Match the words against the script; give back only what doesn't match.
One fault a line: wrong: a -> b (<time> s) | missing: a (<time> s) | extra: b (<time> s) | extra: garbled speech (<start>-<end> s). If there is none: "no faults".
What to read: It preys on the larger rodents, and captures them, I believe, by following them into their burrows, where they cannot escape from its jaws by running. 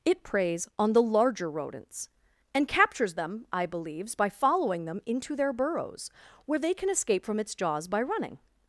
wrong: believe -> believes (3.6 s)
wrong: cannot -> can (6.7 s)